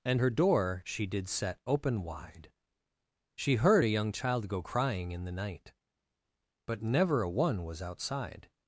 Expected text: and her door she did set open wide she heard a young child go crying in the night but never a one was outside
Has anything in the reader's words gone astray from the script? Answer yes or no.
no